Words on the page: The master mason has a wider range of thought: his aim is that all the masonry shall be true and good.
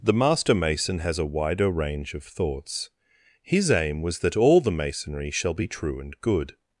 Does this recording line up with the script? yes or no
no